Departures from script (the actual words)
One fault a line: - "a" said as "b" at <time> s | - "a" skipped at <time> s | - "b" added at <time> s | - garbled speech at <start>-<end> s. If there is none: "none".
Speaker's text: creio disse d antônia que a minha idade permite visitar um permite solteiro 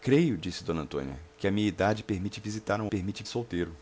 none